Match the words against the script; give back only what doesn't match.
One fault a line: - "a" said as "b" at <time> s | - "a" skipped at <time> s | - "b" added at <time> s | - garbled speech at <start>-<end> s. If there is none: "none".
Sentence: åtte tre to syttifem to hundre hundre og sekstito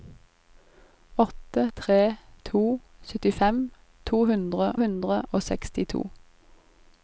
none